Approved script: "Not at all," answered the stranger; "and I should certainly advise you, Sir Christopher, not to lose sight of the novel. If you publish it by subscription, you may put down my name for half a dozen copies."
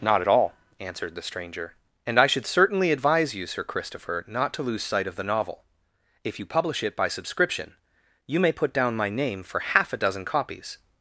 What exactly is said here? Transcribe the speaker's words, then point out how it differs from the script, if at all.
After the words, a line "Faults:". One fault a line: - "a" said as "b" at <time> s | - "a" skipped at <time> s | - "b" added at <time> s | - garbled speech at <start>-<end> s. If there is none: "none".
"Not at all," answered the stranger; "and I should certainly advise you, Sir Christopher, not to lose sight of the novel. If you publish it by subscription, you may put down my name for half a dozen copies."
Faults:
none